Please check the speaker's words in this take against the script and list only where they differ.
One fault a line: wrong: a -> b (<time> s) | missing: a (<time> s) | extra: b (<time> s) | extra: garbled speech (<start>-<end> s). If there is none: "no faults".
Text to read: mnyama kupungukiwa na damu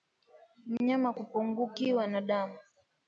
no faults